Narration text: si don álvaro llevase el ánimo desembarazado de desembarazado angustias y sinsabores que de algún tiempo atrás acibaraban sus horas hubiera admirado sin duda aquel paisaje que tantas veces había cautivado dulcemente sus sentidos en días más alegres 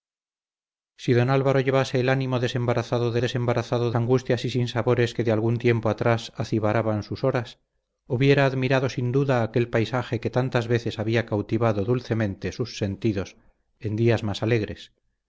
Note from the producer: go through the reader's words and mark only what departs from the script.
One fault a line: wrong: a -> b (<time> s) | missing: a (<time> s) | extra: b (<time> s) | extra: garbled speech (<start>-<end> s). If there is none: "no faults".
no faults